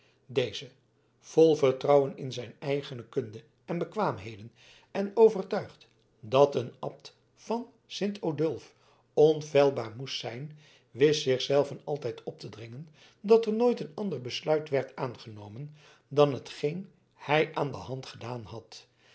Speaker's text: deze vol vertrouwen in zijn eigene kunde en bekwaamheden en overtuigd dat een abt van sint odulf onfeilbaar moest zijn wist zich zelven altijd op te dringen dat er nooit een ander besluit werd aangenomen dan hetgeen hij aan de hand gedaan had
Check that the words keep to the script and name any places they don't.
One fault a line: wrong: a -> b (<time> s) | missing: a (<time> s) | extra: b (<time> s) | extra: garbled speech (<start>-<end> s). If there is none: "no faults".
no faults